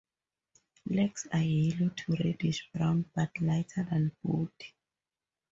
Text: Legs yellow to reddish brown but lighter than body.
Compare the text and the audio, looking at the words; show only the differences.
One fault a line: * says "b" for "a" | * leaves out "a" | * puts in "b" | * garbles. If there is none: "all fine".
* puts in "are"